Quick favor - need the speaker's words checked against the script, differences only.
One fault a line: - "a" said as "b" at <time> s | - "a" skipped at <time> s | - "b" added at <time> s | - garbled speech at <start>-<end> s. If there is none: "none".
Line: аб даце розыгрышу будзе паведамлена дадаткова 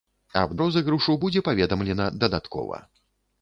- "даце" skipped at 0.5 s